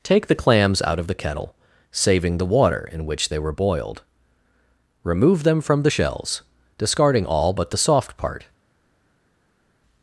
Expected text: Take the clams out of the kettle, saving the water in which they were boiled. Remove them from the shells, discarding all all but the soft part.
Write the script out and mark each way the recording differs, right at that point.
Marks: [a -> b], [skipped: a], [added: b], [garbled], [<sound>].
Take the clams out of the kettle, saving the water in which they were boiled. Remove them from the shells, discarding all [skipped: all] but the soft part.